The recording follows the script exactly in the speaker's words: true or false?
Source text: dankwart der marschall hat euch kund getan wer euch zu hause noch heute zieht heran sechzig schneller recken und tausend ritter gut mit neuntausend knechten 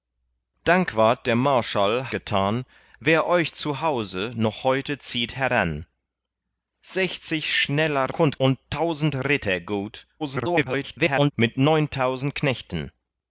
false